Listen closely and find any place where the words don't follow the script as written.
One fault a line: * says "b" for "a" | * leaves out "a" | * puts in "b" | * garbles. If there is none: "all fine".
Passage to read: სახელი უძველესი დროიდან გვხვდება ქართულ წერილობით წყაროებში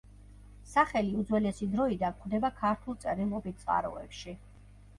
all fine